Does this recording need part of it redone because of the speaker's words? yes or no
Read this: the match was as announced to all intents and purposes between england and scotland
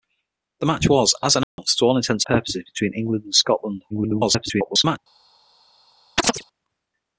yes